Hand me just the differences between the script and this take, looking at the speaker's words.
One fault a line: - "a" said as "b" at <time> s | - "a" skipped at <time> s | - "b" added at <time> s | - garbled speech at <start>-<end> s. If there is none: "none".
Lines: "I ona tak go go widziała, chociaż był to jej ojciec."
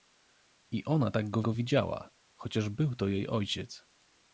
none